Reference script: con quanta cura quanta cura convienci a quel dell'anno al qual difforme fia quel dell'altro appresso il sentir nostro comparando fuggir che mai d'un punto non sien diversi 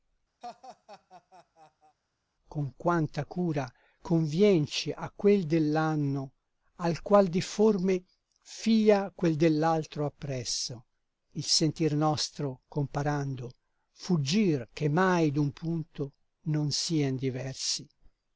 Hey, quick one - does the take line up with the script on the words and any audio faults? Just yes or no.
no